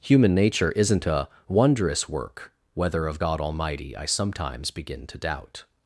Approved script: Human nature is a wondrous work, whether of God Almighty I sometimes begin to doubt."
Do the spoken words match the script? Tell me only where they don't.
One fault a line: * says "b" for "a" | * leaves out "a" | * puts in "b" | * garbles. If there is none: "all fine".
* says "isn't" for "is"